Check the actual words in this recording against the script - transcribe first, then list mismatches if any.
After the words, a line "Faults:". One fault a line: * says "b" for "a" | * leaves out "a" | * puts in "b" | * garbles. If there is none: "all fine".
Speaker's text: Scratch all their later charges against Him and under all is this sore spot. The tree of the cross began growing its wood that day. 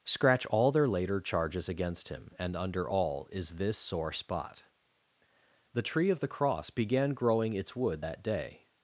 Scratch all their later charges against Him and under all is this sore spot. The tree of the cross began growing its wood that day.
Faults:
all fine